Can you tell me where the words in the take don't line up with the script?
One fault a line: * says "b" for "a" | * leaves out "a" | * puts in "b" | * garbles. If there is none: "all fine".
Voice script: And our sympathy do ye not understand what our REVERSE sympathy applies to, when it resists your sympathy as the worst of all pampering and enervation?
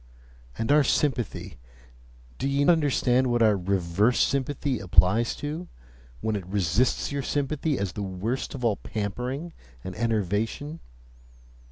* leaves out "not"